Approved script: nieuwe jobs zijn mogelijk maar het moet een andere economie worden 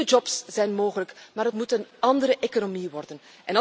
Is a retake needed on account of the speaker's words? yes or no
no